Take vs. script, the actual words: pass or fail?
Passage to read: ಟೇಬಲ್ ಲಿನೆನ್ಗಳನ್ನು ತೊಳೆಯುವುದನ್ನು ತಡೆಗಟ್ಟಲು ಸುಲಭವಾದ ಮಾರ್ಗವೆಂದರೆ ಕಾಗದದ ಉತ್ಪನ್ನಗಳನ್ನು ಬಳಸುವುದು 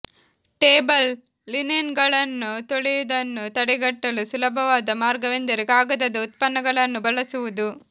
pass